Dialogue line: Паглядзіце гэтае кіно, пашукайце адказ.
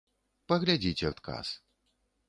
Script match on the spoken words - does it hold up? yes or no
no